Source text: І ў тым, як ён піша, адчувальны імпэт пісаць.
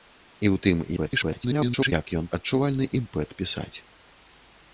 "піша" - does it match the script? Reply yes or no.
no